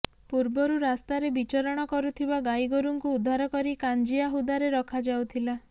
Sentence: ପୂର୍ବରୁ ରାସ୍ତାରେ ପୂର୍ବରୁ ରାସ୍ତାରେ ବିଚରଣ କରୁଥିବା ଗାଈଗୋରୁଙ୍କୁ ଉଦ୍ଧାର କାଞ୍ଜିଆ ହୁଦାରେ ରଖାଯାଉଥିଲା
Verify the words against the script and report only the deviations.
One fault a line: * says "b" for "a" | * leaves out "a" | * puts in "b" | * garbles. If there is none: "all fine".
* leaves out "ପୂର୍ବରୁ ରାସ୍ତାରେ"
* puts in "କରି"